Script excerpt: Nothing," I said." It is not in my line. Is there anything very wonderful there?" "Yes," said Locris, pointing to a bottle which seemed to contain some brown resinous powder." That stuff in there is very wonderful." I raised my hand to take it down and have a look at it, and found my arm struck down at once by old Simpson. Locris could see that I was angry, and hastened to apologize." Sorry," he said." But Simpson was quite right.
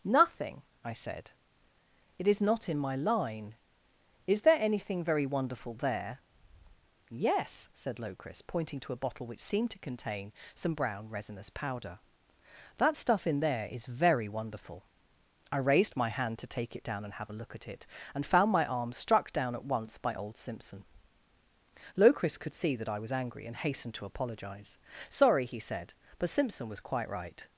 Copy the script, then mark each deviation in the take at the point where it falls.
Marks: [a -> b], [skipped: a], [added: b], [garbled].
Nothing," I said." It is not in my line. Is there anything very wonderful there?" "Yes," said Locris, pointing to a bottle which seemed to contain some brown resinous powder." That stuff in there is very wonderful." I raised my hand to take it down and have a look at it, and found my arm struck down at once by old Simpson. Locris could see that I was angry, and hastened to apologize." Sorry," he said." But Simpson was quite right.